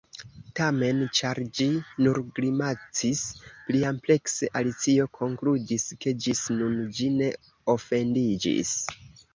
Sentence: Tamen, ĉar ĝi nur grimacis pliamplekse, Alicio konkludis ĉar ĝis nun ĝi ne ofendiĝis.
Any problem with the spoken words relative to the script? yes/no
yes